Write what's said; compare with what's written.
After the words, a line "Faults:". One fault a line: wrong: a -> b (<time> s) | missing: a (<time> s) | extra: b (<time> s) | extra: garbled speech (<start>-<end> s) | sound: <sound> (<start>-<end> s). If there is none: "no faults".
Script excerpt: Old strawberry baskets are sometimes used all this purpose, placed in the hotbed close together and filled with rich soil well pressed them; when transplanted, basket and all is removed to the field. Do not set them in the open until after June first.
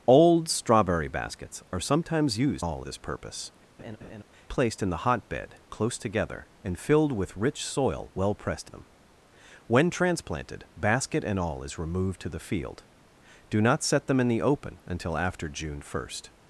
Old strawberry baskets are sometimes used all this purpose, placed in the hotbed close together and filled with rich soil well pressed them; when transplanted, basket and all is removed to the field. Do not set them in the open until after June first.
Faults:
sound: laugh (3.8-4.2 s)